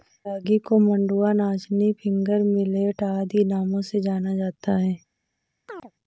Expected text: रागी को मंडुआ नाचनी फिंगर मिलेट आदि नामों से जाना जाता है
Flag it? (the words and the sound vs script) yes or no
yes